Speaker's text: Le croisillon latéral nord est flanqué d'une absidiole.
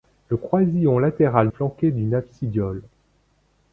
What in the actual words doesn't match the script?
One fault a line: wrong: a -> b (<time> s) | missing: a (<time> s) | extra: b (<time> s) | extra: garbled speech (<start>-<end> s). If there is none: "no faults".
missing: nord est (1.5 s)